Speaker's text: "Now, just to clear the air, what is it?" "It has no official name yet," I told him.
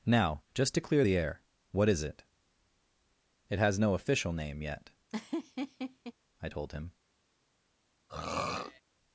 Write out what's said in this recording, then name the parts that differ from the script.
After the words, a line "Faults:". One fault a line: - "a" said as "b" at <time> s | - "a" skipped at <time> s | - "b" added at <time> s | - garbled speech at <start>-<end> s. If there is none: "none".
"Now, just to clear the air, what is it?" "It has no official name yet," I told him.
Faults:
none